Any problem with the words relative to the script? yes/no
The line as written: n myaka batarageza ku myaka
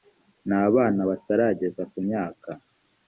yes